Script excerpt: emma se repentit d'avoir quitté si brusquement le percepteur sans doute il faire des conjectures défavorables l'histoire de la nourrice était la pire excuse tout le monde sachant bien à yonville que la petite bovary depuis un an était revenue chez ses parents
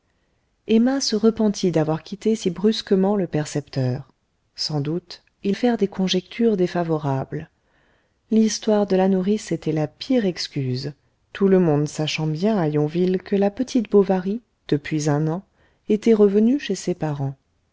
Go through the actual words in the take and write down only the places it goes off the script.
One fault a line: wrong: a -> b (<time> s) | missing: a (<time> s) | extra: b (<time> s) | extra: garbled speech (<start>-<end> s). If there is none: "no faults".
no faults